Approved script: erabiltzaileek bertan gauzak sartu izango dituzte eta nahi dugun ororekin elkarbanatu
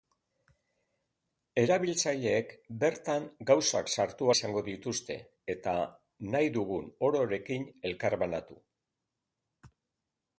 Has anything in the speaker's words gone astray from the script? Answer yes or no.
no